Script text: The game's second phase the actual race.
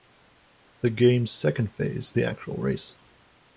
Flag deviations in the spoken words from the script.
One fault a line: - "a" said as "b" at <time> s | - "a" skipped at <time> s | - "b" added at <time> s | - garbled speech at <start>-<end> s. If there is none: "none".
none